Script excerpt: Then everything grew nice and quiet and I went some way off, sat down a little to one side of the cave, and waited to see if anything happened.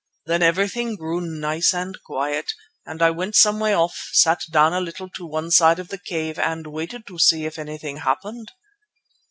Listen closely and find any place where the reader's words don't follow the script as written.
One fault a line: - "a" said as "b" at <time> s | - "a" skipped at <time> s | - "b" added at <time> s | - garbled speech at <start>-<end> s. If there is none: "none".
none